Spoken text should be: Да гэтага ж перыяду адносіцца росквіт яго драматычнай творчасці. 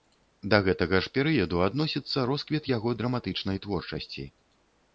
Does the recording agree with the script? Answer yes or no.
yes